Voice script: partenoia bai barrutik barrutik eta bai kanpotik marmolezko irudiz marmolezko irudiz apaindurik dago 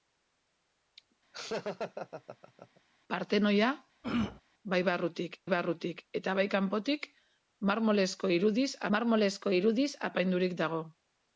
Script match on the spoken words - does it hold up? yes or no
yes